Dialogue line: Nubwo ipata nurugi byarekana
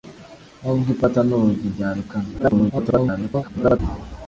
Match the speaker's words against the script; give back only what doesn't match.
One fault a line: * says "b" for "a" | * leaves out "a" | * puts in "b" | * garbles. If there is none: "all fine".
* garbles